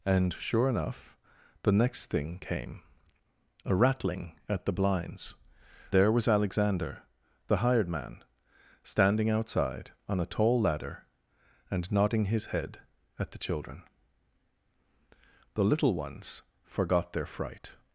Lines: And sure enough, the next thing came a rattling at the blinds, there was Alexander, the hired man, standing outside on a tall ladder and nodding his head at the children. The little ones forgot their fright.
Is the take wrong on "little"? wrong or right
right